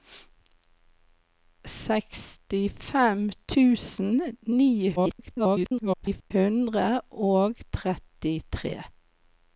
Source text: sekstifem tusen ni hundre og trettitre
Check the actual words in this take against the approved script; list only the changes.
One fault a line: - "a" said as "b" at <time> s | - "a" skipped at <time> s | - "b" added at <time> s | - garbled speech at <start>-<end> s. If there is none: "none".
- garbled speech at 5.0-6.3 s